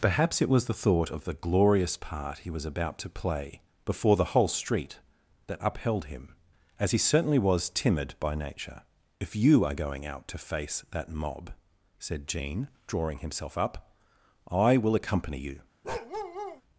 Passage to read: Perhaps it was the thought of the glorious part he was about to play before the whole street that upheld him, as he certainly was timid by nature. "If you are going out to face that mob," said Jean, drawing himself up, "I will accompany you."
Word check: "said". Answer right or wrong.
right